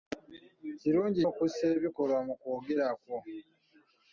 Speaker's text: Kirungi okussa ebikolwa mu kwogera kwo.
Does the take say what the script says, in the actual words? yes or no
yes